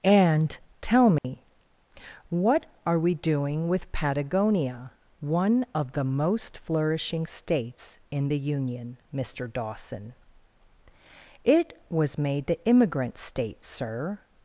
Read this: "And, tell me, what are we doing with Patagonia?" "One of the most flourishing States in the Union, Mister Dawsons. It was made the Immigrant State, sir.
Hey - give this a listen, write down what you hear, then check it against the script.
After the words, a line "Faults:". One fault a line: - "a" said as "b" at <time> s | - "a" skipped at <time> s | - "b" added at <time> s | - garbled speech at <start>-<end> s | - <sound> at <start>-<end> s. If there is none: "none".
"And, tell me, what are we doing with Patagonia?" "One of the most flourishing States in the Union, Mister Dawson. It was made the Immigrant State, sir.
Faults:
- dropout at 1.2-1.2 s
- "Dawsons" said as "Dawson" at 9.5 s